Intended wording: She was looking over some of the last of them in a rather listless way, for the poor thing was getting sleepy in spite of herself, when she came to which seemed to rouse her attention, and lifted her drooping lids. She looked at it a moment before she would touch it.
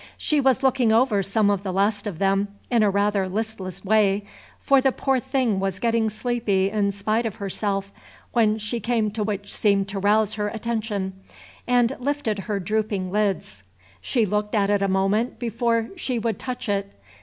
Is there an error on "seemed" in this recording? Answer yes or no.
no